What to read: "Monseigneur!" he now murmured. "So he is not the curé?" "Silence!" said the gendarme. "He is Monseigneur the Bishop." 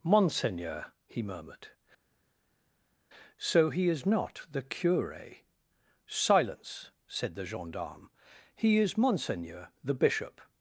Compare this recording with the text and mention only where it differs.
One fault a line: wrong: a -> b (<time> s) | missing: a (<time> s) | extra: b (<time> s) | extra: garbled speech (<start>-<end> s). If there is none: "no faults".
missing: now (1.2 s)